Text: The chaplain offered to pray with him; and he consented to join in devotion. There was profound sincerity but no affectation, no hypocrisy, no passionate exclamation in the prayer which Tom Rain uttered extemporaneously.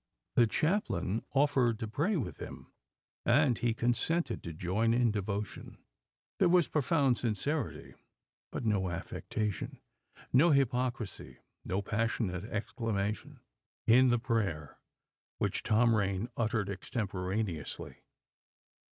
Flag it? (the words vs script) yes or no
no